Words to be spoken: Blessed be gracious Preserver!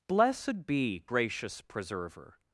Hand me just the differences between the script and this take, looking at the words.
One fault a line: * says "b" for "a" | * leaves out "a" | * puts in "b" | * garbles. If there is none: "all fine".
all fine